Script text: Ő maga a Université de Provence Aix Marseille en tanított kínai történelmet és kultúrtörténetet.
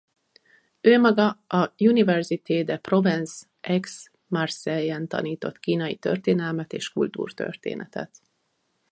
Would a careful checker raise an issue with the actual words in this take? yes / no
no